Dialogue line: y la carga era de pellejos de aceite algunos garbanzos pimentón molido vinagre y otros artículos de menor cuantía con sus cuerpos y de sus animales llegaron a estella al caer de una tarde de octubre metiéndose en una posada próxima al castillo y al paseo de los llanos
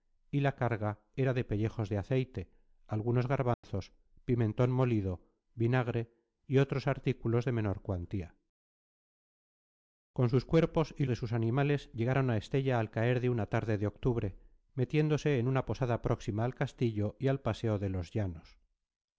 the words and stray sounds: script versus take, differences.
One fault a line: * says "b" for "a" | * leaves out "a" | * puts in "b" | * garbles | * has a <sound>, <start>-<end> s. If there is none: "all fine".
* has a dropout, 3.5-3.6 s